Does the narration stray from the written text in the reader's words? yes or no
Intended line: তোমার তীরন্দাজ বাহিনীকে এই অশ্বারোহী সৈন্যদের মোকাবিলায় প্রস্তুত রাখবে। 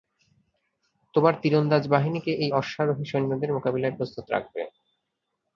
no